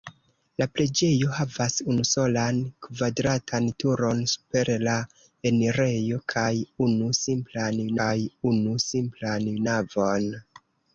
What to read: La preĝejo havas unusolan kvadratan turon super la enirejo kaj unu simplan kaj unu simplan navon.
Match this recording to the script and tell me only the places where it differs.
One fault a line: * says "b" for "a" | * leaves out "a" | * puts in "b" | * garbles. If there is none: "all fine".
all fine